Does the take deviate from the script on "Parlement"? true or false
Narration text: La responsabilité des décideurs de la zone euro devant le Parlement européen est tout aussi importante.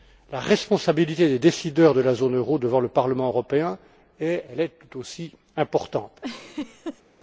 false